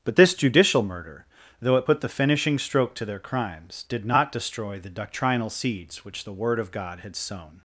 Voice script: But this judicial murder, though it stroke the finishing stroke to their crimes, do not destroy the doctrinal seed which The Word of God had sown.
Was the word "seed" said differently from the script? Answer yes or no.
yes